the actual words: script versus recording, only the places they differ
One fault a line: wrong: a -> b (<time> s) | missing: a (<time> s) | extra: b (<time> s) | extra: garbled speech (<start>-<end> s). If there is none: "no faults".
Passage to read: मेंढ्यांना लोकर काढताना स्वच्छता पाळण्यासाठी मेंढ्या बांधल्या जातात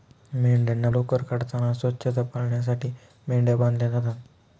no faults